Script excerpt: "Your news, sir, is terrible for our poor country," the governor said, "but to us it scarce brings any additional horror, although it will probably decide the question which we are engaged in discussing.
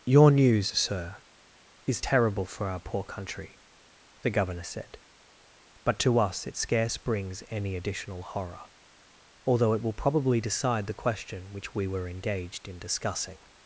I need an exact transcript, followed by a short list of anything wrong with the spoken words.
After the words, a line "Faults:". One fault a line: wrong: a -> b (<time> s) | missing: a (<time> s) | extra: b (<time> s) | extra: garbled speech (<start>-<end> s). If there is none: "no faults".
"Your news, sir, is terrible for our poor country," the governor said, "but to us it scarce brings any additional horror, although it will probably decide the question which we were engaged in discussing.
Faults:
wrong: are -> were (11.9 s)